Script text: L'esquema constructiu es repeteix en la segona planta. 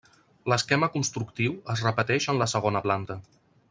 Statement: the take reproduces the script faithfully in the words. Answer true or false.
true